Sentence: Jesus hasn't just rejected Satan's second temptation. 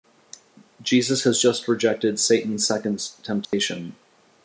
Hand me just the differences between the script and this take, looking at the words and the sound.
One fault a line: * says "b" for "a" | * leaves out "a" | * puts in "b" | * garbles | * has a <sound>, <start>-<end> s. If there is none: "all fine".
* says "has" for "hasn't"
* has a dropout, 3.4-3.5 s